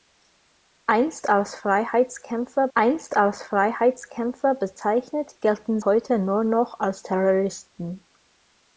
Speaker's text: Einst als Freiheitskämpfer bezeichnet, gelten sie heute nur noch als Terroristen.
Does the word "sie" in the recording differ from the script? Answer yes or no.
yes